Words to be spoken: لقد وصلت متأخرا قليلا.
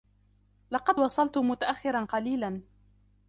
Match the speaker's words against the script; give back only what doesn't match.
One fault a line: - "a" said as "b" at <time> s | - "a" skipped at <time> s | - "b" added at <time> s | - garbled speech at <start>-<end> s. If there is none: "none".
none